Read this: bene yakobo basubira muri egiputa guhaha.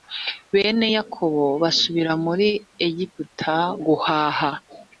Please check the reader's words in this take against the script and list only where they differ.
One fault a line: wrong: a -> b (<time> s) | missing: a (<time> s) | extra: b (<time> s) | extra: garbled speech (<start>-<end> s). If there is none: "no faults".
no faults